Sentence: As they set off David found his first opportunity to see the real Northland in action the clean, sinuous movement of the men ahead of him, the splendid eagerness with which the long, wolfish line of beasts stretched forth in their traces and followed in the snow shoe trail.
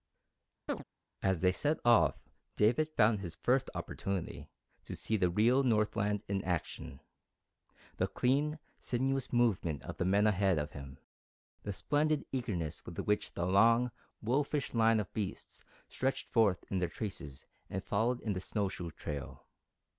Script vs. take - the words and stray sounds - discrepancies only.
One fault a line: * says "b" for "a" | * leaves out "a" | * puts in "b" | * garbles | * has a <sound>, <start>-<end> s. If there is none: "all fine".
* has a chirp, 0.7-0.8 s